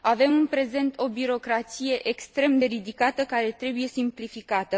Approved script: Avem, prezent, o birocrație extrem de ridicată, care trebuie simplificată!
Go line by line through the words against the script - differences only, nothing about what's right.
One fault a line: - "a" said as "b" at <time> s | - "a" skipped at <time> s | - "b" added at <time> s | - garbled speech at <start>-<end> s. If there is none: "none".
- "în" added at 0.3 s